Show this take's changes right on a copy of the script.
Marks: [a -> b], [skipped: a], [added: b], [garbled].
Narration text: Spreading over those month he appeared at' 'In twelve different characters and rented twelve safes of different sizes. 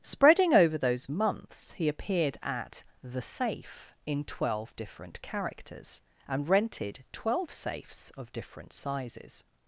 Spreading over those [month -> months] he appeared at' [added: The Safe] 'In twelve different characters and rented twelve safes of different sizes.